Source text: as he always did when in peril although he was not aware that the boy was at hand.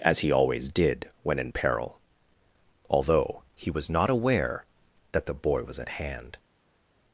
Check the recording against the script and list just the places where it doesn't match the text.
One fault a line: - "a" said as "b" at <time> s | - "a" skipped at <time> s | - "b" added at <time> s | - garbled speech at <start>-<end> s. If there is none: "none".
none